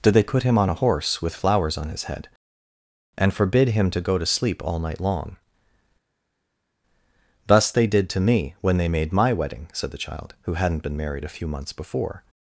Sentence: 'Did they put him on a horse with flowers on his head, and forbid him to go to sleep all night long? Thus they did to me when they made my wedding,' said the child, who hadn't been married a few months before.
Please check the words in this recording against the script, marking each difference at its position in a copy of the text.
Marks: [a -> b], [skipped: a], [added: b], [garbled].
'Did they put him on a horse with flowers on his head, and forbid him to go to sleep all night long? Thus they did to me when they made my wedding,' said the child, who hadn't been married a few months before.